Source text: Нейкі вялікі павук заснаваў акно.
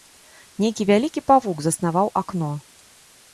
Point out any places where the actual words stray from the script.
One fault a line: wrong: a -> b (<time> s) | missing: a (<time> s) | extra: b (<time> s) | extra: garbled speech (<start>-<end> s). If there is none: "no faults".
no faults